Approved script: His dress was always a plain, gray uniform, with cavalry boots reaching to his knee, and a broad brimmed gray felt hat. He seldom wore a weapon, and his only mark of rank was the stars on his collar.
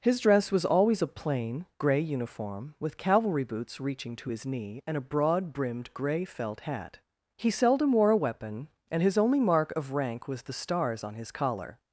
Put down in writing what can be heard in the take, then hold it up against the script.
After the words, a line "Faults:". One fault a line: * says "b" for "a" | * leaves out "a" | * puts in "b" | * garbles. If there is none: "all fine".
His dress was always a plain, gray uniform, with cavalry boots reaching to his knee, and a broad brimmed gray felt hat. He seldom wore a weapon, and his only mark of rank was the stars on his collar.
Faults:
all fine